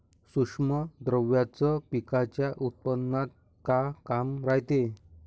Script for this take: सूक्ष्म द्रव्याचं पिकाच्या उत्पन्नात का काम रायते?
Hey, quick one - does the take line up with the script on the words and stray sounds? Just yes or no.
yes